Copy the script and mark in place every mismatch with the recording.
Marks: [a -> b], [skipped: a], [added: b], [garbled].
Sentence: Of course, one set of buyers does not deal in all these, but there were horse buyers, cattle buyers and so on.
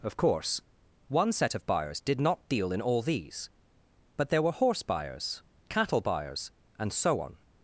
Of course, one set of buyers [does -> did] not deal in all these, but there were horse buyers, cattle buyers and so on.